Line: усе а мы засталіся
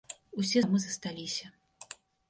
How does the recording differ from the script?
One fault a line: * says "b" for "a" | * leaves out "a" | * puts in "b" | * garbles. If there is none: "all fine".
all fine